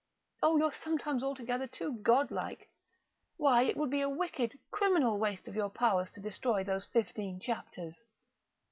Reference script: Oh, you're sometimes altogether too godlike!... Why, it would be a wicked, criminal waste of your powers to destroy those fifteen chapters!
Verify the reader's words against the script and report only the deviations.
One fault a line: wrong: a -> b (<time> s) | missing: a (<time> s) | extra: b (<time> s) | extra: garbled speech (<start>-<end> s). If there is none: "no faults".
no faults